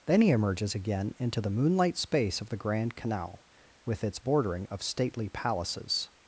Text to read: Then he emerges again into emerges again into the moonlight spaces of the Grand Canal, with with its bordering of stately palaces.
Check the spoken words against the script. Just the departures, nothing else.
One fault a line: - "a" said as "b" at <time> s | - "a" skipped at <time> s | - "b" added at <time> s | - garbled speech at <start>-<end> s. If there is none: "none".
- "emerges again into" skipped at 1.4 s
- "spaces" said as "space" at 2.0 s
- "with" skipped at 4.0 s